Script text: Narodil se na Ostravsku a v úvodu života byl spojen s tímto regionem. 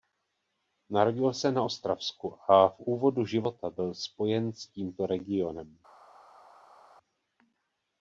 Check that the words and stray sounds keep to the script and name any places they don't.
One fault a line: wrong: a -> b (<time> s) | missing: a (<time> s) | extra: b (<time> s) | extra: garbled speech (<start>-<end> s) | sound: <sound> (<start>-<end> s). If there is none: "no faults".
no faults